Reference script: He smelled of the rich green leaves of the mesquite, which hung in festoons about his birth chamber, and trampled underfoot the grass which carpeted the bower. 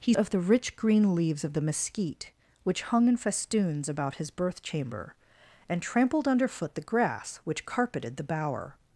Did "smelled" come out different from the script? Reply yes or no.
yes